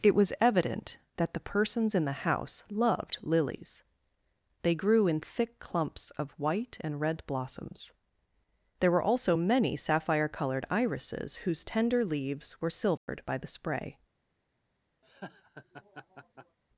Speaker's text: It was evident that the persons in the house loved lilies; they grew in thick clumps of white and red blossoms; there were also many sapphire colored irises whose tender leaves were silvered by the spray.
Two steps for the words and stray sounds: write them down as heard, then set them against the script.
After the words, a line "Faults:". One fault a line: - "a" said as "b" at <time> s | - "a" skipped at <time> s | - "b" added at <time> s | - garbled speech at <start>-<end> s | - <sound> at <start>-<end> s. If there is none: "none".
It was evident that the persons in the house loved lilies; they grew in thick clumps of white and red blossoms; there were also many sapphire colored irises whose tender leaves were silvered by the spray.
Faults:
- dropout at 13.0-13.1 s
- laugh at 15.0-16.6 s